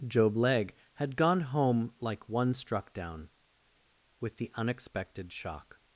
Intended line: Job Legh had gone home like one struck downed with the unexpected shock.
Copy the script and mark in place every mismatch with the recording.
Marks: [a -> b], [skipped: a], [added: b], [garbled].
Job Legh had gone home like one struck [downed -> down] with the unexpected shock.